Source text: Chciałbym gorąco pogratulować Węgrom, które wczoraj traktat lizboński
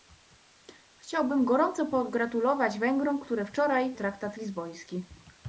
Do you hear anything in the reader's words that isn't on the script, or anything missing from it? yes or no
no